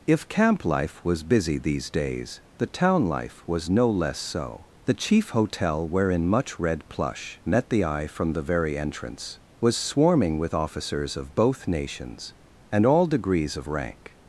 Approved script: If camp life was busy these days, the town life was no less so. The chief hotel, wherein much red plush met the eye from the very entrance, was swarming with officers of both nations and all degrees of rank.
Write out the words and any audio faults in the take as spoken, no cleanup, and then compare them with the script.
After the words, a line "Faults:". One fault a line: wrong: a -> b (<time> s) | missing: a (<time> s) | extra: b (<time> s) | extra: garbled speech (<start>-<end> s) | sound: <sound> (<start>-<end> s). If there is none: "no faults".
If camp life was busy these days, the town life was no less so. The chief hotel, wherein much red plush met the eye from the very entrance, was swarming with officers of both nations and all degrees of rank.
Faults:
no faults